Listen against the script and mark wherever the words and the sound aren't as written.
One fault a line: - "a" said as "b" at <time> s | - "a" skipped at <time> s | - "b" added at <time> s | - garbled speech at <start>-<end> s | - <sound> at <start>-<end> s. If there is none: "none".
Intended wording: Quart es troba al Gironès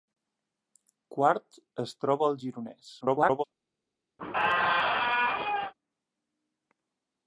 - garbled speech at 3.0-3.4 s
- squeak at 4.2-5.7 s